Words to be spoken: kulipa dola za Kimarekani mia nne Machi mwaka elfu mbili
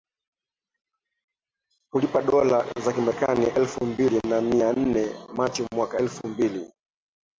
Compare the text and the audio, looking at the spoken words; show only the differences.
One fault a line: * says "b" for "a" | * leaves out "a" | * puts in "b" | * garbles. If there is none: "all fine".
* puts in "elfu mbili na"